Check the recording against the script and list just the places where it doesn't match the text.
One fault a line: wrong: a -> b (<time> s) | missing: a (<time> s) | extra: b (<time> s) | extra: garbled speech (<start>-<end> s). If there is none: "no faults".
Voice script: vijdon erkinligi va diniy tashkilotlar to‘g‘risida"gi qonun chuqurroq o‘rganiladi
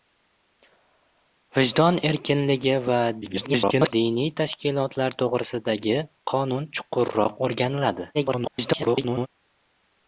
extra: garbled speech (3.2-3.9 s)
extra: garbled speech (8.1-9.3 s)